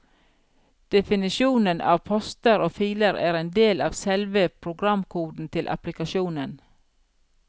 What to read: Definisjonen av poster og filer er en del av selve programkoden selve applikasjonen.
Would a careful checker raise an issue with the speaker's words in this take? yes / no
yes